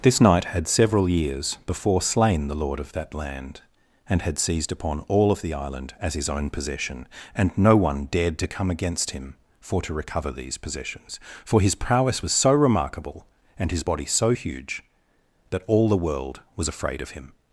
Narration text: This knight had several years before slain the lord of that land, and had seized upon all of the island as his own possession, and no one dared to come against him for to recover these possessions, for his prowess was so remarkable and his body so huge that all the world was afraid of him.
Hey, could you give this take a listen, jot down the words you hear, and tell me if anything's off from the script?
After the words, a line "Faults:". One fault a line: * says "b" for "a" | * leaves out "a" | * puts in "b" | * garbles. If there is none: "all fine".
This knight had several years before slain the lord of that land, and had seized upon all of the island as his own possession, and no one dared to come against him for to recover these possessions, for his prowess was so remarkable and his body so huge that all the world was afraid of him.
Faults:
all fine